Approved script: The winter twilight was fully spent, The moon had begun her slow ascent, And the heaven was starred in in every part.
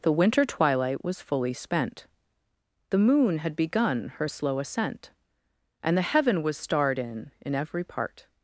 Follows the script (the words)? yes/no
yes